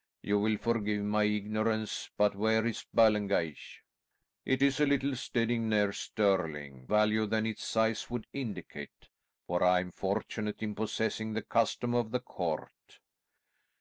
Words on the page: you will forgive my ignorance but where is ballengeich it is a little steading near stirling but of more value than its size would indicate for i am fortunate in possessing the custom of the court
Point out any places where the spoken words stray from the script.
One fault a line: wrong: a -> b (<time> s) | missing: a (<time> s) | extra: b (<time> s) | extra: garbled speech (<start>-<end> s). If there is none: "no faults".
missing: but of more (6.9 s)